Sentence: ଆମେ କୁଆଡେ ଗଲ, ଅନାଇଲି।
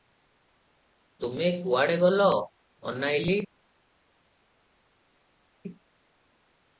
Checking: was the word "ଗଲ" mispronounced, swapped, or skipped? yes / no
no